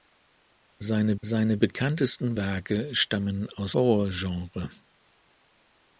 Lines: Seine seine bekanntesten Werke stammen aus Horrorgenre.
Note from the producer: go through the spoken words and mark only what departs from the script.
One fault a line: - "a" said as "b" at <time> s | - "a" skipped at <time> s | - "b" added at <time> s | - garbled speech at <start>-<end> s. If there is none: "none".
none